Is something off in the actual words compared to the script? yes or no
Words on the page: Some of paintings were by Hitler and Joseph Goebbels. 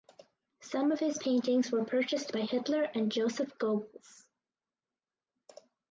yes